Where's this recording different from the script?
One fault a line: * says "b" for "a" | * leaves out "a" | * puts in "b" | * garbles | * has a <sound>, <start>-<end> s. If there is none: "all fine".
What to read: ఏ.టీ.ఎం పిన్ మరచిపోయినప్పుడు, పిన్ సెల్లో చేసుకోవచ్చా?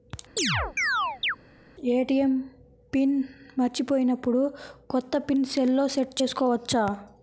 * has a chirp, 0.4-1.4 s
* puts in "కొత్త"
* puts in "సెట్"